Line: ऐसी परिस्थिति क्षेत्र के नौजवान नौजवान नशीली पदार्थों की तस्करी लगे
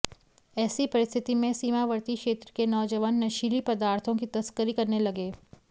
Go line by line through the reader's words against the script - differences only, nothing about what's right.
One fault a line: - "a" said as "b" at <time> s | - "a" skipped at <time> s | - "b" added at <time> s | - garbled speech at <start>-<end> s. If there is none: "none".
- "में सीमावर्ती" added at 1.4 s
- "नौजवान" skipped at 3.2 s
- "करने" added at 4.7 s